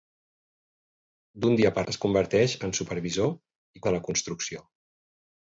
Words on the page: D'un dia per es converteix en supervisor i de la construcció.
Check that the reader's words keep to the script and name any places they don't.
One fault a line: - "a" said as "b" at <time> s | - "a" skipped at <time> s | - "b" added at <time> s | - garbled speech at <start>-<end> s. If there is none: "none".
none